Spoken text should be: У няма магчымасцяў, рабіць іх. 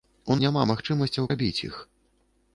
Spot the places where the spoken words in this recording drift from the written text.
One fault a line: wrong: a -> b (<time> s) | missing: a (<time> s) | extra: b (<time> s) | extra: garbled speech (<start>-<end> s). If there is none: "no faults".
no faults